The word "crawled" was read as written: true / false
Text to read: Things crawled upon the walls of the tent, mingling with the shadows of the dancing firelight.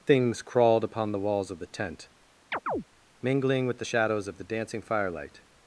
true